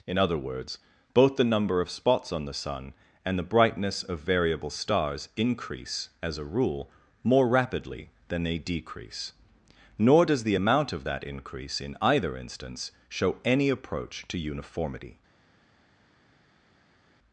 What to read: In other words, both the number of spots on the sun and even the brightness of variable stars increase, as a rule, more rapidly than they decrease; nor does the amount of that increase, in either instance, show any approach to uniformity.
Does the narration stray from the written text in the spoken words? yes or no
yes